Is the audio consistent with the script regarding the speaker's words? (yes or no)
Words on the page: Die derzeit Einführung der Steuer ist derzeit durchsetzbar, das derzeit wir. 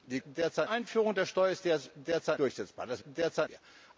yes